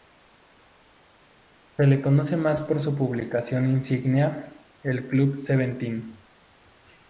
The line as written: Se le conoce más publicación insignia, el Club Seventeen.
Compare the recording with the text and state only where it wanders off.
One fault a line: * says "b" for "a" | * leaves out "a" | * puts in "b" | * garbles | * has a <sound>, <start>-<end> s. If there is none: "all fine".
* puts in "por su"